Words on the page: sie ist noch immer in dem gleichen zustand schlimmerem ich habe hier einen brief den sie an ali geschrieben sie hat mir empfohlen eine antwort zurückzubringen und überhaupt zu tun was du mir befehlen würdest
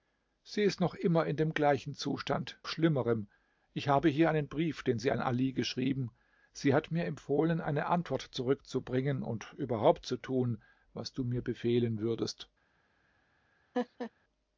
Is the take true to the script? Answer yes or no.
yes